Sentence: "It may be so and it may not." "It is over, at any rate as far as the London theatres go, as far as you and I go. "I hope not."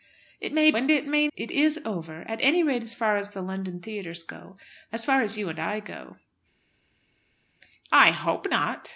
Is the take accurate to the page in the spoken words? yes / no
no